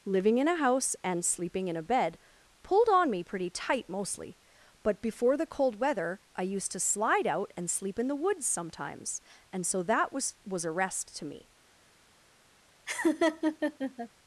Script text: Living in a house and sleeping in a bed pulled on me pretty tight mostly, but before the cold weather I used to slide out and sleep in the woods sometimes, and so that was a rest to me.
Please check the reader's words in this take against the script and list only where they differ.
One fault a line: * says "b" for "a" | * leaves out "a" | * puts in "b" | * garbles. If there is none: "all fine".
* puts in "was"